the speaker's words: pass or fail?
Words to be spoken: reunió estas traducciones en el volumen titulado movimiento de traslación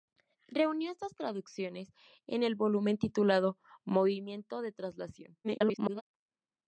fail